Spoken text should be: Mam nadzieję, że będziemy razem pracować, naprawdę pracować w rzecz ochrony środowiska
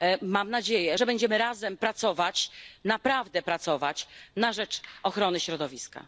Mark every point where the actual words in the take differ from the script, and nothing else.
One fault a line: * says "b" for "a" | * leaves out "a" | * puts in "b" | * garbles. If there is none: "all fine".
* says "na" for "w"